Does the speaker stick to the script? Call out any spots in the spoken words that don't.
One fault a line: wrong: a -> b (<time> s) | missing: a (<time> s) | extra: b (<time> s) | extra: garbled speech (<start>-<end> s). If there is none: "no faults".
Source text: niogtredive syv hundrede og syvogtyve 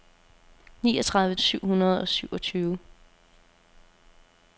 no faults